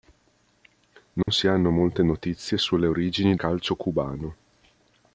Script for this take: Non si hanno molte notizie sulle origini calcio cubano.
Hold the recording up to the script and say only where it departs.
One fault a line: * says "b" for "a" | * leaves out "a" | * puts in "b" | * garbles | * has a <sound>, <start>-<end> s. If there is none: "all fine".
* has a dropout, 1.2-1.3 s